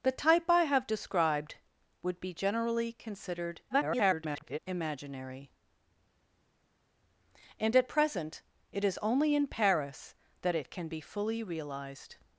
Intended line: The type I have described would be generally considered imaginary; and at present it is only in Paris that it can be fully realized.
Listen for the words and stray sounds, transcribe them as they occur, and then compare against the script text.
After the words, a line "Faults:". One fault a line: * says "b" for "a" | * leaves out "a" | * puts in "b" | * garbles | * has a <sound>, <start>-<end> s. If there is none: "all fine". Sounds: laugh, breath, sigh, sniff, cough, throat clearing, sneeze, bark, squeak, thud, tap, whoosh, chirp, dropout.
The type I have described would be generally considered [garbled] imaginary; and at present it is only in Paris that it can be fully realized.
Faults:
* garbles